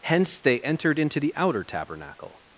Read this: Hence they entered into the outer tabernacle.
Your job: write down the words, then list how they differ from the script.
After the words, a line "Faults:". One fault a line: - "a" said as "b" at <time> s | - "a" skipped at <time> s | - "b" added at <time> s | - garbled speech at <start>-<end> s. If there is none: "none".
Hence they entered into the outer tabernacle.
Faults:
none